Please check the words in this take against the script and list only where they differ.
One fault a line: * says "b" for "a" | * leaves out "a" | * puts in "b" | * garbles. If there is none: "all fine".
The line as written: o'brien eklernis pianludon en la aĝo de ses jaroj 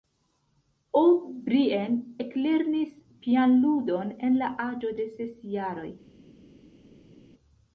all fine